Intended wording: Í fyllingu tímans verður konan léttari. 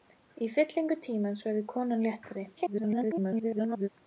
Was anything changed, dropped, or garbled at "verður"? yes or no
no